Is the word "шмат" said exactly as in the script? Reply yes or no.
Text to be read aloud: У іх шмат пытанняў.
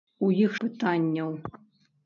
no